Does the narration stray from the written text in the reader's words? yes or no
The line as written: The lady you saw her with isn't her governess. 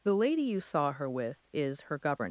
yes